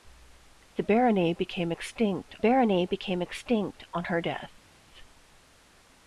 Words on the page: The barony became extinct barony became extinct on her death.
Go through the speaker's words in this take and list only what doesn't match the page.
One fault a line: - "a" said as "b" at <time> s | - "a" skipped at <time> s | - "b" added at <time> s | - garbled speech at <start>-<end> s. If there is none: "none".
none